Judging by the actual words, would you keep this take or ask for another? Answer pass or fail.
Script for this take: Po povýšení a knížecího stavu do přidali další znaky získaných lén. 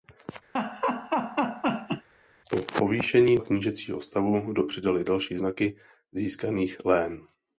pass